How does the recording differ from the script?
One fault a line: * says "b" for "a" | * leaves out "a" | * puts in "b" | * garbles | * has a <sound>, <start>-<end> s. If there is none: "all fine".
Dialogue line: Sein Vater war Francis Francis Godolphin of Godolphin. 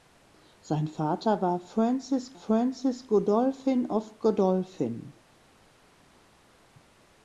all fine